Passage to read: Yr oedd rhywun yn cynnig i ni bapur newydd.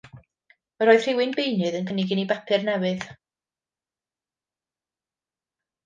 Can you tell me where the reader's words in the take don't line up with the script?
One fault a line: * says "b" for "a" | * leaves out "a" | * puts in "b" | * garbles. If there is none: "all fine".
* puts in "beunydd"